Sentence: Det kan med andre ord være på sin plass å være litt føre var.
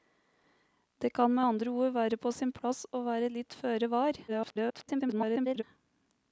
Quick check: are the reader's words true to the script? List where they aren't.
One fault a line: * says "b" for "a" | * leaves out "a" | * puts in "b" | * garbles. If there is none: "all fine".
* garbles